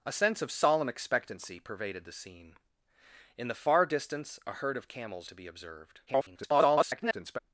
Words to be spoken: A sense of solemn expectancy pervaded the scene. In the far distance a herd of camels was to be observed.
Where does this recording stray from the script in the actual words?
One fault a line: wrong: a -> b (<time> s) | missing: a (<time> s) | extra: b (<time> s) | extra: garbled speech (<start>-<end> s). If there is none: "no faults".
missing: was (5.3 s)
extra: garbled speech (6.1-7.4 s)